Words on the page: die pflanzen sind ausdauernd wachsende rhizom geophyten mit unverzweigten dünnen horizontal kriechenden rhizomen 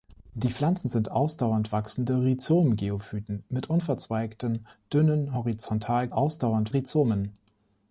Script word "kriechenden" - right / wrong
wrong